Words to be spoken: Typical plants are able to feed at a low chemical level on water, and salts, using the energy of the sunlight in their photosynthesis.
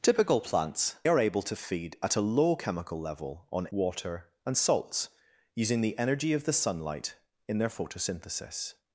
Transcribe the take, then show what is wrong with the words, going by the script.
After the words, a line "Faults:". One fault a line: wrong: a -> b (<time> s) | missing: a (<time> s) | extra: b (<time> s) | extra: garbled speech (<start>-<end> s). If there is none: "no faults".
Typical plants are able to feed at a low chemical level on water, and salts, using the energy of the sunlight in their photosynthesis.
Faults:
no faults